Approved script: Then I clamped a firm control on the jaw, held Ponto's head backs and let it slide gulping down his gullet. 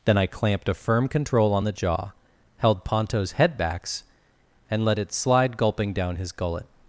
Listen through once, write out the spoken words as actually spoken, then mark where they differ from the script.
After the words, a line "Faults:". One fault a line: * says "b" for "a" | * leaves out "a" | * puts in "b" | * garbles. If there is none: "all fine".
Then I clamped a firm control on the jaw, held Ponto's head backs and let it slide gulping down his gullet.
Faults:
all fine